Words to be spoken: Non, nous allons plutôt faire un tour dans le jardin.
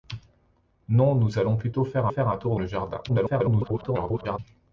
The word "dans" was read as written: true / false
false